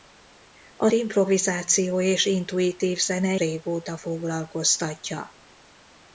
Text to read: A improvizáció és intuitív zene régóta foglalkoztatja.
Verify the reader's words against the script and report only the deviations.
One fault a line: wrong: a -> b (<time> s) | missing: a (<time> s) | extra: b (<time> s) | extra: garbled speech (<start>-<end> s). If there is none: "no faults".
no faults